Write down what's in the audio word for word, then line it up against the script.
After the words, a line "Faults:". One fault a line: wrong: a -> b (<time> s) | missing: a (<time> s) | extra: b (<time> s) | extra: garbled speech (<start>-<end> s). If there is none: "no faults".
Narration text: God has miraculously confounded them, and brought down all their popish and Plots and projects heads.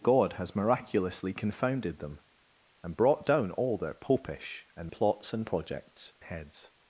God has miraculously confounded them, and brought down all their popish and Plots and projects heads.
Faults:
no faults